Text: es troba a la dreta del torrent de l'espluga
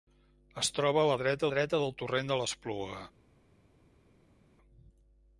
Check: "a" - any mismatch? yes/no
no